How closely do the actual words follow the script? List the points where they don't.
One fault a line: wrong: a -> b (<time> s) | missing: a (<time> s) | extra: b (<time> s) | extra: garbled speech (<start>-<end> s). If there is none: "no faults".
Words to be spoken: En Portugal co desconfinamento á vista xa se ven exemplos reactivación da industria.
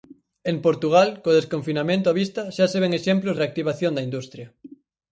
no faults